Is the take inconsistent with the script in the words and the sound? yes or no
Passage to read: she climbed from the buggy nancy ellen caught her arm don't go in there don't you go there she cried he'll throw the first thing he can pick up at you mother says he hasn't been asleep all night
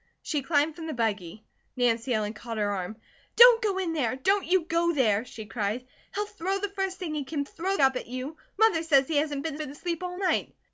yes